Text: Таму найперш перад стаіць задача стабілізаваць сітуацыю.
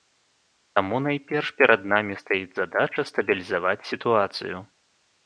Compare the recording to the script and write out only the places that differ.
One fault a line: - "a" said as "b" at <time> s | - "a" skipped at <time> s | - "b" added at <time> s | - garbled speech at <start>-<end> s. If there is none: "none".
- "намі" added at 1.9 s